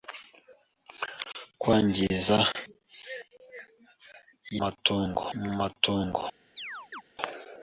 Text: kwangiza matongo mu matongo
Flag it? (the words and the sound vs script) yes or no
yes